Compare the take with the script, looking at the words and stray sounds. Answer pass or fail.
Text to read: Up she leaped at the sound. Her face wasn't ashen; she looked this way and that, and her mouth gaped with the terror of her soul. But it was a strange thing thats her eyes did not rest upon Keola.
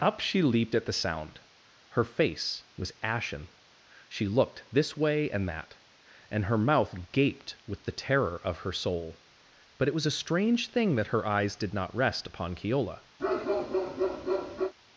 fail